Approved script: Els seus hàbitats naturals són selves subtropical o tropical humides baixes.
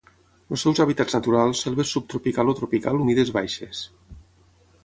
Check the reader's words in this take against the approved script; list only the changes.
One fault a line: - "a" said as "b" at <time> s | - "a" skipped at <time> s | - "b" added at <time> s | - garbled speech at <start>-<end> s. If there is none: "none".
- "són" skipped at 1.6 s